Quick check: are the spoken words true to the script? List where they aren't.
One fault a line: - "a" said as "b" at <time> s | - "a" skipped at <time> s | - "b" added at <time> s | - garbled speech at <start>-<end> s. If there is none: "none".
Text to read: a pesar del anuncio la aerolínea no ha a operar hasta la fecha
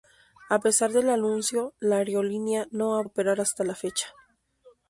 none